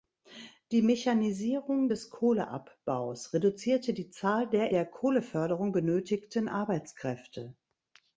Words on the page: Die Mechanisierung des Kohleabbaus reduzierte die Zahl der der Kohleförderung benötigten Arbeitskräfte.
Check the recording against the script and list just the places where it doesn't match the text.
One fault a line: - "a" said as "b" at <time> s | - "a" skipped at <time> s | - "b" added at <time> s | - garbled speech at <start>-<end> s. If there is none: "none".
none